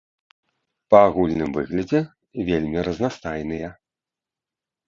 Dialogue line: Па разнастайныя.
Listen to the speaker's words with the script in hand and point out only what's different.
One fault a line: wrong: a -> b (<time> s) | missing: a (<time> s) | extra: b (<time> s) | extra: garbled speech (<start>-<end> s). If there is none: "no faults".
extra: агульным выглядзе вельмі (1.1 s)